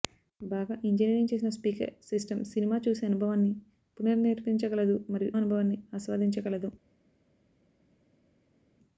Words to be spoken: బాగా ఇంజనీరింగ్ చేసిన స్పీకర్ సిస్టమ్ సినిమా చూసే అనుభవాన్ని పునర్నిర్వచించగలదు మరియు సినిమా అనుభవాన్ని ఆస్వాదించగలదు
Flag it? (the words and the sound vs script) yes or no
yes